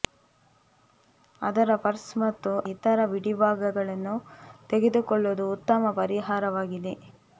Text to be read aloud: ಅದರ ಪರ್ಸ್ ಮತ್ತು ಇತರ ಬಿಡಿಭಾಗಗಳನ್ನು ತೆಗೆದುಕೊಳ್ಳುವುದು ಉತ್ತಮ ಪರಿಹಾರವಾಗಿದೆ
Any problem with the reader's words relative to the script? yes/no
no